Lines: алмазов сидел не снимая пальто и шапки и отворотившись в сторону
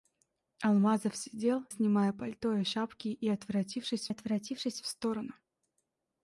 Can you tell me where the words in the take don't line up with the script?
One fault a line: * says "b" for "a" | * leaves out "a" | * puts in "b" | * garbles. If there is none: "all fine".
* leaves out "не"
* puts in "отворотившись"